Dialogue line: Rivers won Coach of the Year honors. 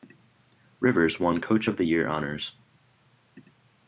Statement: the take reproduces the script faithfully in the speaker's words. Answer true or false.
true